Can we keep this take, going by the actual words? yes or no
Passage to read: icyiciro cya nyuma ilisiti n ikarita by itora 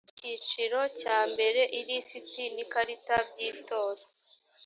no